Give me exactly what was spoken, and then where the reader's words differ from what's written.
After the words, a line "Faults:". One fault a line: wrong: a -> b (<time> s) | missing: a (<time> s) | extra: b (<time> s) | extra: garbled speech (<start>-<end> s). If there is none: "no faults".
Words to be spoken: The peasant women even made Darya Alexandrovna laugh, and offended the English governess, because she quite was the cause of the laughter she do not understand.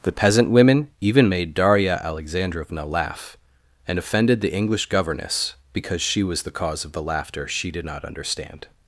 The peasant women even made Darya Alexandrovna laugh, and offended the English governess, because she was the cause of the laughter she did not understand.
Faults:
missing: quite (6.2 s)
wrong: do -> did (7.7 s)